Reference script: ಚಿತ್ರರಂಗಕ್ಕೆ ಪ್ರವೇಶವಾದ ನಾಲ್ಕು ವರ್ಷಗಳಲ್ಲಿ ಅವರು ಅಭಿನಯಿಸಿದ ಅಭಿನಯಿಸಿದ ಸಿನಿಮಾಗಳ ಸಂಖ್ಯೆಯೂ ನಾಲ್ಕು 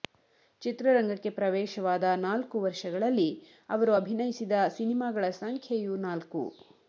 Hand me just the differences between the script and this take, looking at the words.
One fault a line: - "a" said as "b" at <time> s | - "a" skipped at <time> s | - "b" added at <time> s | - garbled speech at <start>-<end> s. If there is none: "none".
- "ಅಭಿನಯಿಸಿದ" skipped at 4.5 s